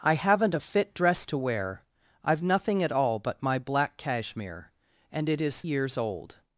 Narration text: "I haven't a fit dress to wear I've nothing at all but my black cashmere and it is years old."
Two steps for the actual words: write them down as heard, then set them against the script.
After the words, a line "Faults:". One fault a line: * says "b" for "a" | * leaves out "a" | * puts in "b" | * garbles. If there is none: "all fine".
"I haven't a fit dress to wear I've nothing at all but my black cashmere and it is years old."
Faults:
all fine